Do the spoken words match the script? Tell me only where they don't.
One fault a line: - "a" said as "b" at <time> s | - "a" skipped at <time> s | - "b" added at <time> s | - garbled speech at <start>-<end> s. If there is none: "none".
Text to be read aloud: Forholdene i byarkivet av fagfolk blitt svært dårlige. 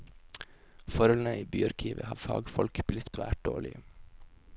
none